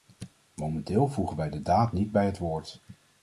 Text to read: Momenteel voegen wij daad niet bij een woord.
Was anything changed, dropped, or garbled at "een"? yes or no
yes